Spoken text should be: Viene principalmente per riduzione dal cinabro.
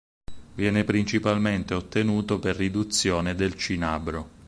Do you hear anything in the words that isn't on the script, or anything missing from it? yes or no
yes